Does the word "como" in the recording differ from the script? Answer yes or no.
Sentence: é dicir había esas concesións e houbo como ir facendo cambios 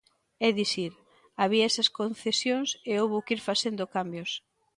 yes